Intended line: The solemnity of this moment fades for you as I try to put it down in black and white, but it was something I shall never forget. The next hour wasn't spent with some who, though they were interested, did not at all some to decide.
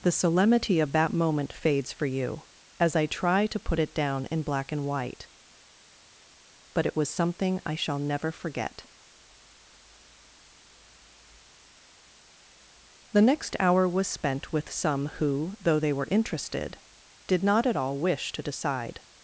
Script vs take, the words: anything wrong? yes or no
yes